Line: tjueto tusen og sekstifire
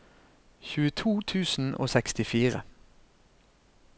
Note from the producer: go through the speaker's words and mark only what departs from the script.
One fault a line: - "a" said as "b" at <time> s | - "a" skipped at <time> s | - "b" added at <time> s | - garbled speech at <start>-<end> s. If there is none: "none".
none